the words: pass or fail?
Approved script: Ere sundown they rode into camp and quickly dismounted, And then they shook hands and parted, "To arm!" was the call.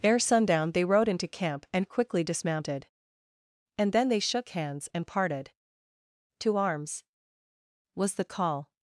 fail